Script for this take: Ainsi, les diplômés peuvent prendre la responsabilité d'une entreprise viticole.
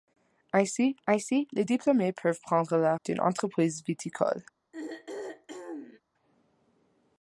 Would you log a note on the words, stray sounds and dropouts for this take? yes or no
yes